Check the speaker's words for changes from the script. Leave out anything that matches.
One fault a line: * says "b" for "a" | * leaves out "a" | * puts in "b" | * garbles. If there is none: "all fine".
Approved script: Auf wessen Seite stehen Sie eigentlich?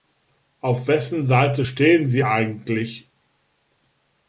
all fine